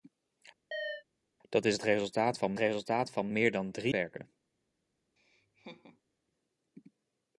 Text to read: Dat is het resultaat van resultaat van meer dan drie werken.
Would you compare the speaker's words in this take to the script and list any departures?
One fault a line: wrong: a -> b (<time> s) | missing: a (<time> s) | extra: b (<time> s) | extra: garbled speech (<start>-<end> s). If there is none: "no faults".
no faults